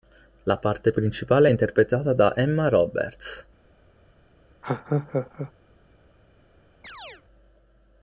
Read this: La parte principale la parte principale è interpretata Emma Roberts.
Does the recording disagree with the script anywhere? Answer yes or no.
yes